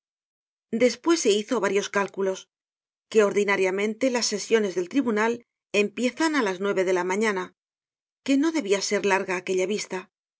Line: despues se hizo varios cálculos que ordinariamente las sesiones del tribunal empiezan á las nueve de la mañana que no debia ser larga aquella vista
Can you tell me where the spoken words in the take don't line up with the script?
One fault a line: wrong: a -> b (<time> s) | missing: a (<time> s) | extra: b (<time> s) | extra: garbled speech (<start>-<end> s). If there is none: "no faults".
no faults